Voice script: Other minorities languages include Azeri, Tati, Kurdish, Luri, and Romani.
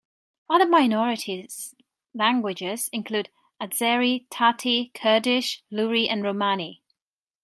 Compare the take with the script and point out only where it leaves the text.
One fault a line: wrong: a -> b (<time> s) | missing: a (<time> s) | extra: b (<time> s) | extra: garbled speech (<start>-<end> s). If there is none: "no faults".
no faults